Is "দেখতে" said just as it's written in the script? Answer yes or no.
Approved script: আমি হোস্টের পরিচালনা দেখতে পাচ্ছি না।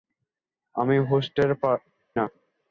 no